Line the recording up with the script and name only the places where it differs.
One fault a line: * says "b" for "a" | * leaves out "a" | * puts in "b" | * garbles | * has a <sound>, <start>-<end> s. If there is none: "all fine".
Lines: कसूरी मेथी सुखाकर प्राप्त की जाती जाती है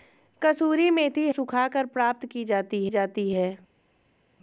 all fine